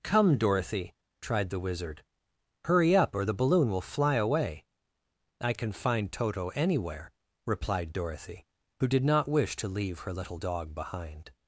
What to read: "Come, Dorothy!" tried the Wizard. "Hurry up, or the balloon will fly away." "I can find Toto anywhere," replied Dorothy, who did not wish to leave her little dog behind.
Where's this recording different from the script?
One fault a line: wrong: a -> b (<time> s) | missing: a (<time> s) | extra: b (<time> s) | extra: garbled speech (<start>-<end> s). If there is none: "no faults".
no faults